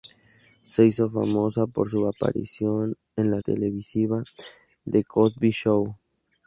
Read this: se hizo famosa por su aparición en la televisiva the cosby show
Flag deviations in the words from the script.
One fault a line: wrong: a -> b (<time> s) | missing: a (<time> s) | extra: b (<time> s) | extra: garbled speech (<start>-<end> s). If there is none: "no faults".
no faults